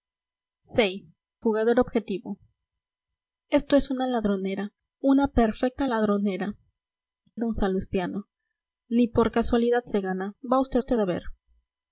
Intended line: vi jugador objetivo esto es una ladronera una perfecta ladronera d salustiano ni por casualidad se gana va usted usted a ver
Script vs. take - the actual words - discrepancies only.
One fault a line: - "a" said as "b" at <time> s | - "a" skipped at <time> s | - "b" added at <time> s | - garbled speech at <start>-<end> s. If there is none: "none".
none